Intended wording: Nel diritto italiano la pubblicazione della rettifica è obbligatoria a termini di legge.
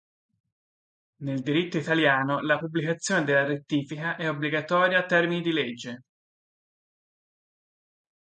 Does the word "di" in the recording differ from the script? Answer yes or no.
no